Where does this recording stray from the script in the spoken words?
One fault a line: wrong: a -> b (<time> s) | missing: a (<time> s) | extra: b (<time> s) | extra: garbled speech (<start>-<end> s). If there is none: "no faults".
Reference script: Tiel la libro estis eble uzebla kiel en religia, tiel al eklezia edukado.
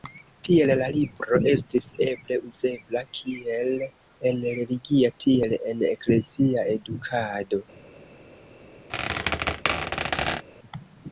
wrong: al -> en (5.6 s)